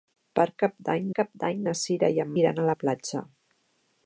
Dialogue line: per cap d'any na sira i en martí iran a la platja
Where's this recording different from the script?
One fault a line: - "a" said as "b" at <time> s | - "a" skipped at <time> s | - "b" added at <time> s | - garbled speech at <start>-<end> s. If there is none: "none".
- "cap d'any" added at 1.2 s
- "martí" skipped at 2.4 s